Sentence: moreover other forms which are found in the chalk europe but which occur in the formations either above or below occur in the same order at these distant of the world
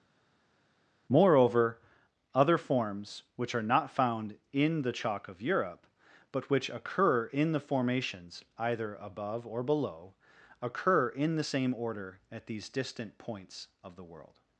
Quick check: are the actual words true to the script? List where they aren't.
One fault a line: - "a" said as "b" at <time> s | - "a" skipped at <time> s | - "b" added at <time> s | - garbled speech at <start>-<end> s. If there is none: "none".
- "not" added at 3.6 s
- "of" added at 5.3 s
- "points" added at 13.2 s